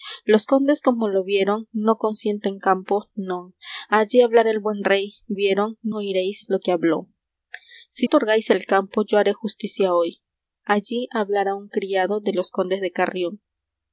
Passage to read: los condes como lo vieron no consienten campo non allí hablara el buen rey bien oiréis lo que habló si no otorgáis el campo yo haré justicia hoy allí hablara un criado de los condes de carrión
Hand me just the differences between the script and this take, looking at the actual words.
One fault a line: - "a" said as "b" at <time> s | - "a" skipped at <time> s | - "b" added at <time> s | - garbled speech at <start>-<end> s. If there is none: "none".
- "bien" said as "vieron" at 5.3 s
- "no" skipped at 8.1 s